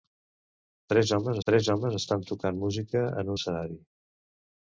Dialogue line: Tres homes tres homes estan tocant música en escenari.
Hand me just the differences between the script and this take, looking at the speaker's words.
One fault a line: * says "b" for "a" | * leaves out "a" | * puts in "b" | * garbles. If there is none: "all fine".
all fine